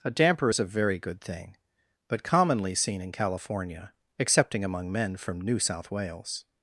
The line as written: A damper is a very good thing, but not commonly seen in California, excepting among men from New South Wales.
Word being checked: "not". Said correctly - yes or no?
no